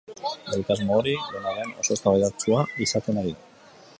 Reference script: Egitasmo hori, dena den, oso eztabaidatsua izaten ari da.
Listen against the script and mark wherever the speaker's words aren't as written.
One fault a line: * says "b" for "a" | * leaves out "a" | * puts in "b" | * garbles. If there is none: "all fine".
all fine